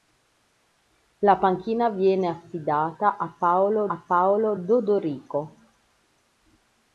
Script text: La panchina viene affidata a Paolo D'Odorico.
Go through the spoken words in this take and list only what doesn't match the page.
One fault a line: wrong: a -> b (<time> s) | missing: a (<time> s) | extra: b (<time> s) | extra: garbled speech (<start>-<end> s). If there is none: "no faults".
extra: a Paolo (3.9 s)